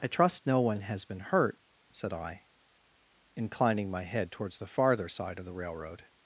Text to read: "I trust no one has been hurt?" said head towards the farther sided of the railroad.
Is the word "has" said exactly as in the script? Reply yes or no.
yes